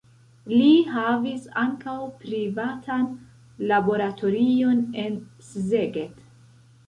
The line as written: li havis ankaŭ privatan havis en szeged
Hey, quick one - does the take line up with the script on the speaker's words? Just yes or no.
no